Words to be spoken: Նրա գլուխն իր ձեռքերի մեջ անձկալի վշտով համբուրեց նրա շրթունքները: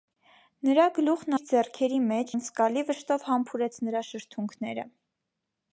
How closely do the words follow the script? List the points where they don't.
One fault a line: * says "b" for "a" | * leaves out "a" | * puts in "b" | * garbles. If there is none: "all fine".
all fine